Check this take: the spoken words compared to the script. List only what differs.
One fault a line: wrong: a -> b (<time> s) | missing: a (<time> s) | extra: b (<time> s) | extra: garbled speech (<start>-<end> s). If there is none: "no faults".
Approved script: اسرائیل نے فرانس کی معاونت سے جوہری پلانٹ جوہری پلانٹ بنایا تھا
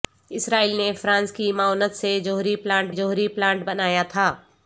no faults